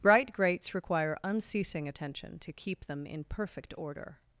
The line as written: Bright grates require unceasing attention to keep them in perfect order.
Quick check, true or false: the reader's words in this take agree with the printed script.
true